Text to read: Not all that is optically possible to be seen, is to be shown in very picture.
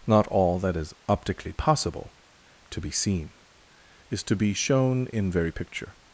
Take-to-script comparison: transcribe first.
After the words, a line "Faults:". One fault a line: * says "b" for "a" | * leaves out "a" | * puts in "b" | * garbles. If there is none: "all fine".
Not all that is optically possible to be seen, is to be shown in very picture.
Faults:
all fine